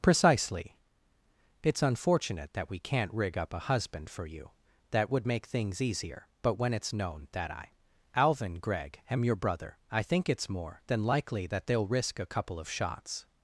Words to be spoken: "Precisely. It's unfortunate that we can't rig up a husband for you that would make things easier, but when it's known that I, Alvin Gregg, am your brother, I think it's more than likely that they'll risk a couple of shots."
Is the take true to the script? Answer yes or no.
yes